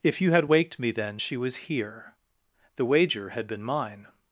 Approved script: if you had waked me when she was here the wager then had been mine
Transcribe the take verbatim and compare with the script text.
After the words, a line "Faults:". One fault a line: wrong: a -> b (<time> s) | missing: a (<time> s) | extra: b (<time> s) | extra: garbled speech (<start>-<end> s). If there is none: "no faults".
if you had waked me then she was here the wager had been mine
Faults:
wrong: when -> then (0.9 s)
missing: then (3.3 s)